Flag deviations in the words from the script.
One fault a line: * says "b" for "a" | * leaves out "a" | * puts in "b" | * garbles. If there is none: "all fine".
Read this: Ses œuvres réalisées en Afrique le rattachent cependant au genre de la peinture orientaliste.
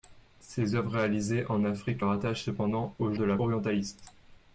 * leaves out "le"
* leaves out "genre"
* leaves out "peinture"